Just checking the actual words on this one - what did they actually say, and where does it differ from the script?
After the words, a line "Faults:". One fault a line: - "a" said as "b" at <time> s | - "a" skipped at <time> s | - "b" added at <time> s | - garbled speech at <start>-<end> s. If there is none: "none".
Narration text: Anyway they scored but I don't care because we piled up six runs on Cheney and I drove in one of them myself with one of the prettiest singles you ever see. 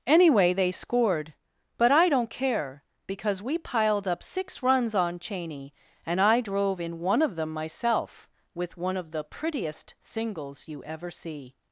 Anyway they scored but I don't care because we piled up six runs on Cheney and I drove in one of them myself with one of the prettiest singles you ever see.
Faults:
none